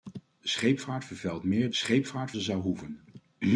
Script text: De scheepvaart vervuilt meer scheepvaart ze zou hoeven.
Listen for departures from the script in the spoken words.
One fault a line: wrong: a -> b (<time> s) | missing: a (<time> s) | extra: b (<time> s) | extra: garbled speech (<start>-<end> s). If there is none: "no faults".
no faults